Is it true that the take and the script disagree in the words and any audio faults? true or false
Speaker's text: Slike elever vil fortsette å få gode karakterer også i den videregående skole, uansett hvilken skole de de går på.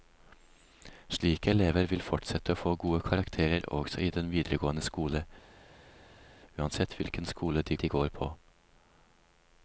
false